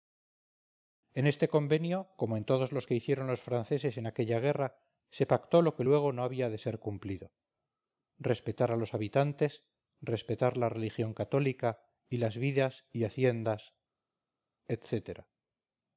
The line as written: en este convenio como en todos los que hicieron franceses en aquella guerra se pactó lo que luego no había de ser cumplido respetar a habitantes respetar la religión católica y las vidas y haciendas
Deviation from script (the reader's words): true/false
true